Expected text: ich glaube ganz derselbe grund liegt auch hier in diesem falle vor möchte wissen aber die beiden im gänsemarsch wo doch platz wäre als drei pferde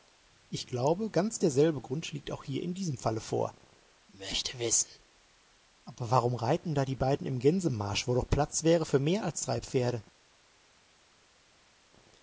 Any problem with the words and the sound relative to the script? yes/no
yes